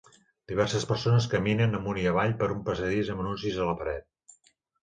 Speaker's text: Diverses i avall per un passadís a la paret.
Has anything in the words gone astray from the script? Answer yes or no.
yes